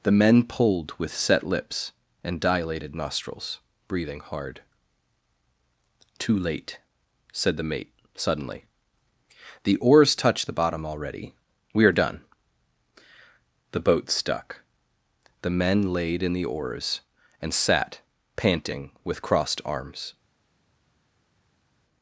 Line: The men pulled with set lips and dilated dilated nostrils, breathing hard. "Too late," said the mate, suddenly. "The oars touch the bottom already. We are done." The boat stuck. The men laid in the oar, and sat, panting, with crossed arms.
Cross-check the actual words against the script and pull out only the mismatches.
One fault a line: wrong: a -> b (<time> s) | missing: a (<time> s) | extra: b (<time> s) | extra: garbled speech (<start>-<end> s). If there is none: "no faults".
missing: dilated (3.0 s)
wrong: oar -> oars (16.4 s)